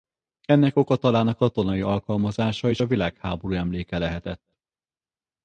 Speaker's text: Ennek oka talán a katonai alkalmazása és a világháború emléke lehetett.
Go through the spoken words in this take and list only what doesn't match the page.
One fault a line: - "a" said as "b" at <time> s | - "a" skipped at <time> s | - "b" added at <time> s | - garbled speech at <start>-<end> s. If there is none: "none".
none